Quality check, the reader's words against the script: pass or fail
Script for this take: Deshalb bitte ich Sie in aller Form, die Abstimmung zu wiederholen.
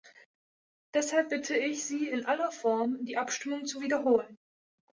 pass